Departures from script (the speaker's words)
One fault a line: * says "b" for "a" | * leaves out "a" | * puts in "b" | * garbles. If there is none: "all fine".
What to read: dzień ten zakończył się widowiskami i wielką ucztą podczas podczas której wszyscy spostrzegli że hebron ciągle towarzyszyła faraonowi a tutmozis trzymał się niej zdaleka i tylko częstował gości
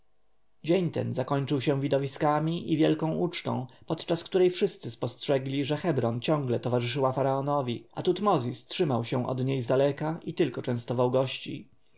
* leaves out "podczas"
* puts in "od"